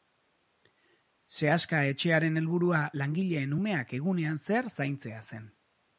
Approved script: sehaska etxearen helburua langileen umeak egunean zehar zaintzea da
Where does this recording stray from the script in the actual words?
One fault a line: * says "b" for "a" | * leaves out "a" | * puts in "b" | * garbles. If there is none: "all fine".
* says "zen" for "da"